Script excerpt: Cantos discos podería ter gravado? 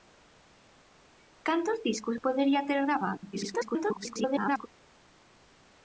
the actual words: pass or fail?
fail